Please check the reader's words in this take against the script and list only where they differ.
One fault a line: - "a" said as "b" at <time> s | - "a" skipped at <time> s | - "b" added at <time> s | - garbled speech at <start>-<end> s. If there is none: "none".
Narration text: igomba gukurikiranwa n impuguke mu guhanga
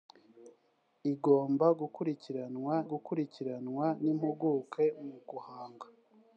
- "gukurikiranwa" added at 2.9 s